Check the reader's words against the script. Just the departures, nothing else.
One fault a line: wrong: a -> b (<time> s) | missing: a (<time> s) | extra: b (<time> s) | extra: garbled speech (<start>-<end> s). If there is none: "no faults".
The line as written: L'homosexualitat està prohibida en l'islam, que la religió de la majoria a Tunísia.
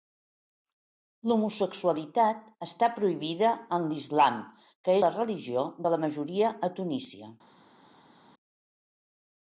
no faults